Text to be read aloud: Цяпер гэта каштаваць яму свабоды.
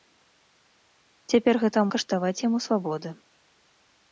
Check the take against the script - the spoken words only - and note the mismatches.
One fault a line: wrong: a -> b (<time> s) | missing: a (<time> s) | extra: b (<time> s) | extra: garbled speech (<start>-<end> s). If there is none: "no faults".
no faults